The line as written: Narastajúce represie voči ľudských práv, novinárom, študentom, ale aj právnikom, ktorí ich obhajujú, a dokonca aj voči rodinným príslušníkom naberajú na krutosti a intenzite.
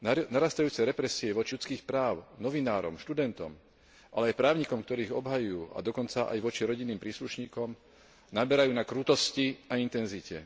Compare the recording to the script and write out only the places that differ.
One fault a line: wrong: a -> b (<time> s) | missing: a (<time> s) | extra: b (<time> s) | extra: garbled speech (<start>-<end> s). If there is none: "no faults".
no faults